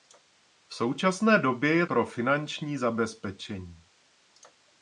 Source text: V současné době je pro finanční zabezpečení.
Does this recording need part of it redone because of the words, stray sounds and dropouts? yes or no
no